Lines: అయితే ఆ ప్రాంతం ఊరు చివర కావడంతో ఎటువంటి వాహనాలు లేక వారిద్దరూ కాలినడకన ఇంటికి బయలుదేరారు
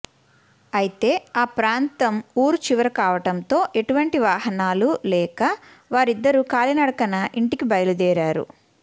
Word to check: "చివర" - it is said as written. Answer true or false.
true